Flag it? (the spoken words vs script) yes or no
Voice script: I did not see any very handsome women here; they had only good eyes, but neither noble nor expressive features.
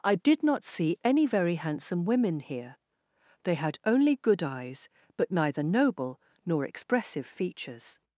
no